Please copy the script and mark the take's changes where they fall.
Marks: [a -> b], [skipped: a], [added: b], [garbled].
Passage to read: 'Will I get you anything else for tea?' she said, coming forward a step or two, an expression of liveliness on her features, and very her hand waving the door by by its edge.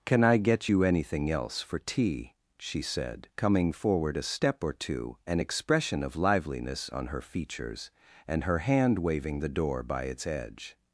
['Will -> Can] I get you anything else for tea?' she said, coming forward a step or two, an expression of liveliness on her features, and [skipped: very] her hand waving the door by [skipped: by] its edge.